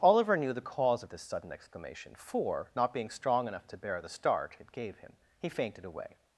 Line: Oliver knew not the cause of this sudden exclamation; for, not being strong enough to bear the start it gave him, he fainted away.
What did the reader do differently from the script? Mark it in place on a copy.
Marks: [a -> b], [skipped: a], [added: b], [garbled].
Oliver knew [skipped: not] the cause of this sudden exclamation; for, not being strong enough to bear the start it gave him, he fainted away.